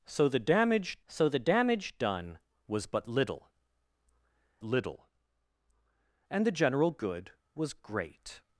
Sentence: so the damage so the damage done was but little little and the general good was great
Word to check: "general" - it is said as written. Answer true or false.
true